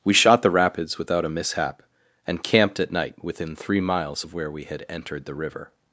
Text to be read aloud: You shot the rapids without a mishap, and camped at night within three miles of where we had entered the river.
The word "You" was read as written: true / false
false